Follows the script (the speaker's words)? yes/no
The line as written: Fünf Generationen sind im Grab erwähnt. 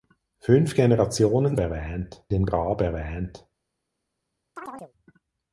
no